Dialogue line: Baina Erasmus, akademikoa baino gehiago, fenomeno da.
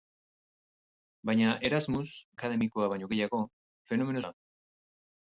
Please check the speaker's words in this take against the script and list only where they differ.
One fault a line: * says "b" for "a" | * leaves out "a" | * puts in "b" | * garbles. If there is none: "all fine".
all fine